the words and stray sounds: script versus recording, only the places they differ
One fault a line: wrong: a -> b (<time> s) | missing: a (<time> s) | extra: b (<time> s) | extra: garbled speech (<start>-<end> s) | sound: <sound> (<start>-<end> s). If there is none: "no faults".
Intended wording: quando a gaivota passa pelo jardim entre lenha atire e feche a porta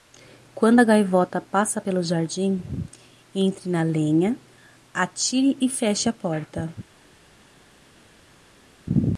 extra: na (3.7 s)